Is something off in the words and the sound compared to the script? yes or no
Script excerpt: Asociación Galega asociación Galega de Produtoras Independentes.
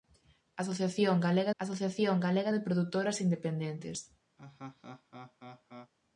yes